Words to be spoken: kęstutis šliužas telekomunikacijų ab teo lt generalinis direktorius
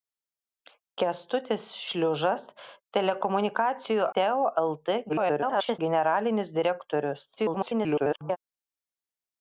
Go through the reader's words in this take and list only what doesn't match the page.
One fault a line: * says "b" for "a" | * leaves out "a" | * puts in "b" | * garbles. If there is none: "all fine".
* leaves out "ab"
* garbles
* garbles